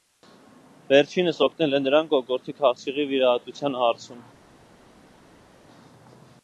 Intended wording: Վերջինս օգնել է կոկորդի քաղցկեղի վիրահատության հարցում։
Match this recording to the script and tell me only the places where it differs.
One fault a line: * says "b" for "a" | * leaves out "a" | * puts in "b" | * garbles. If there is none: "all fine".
* puts in "նրան"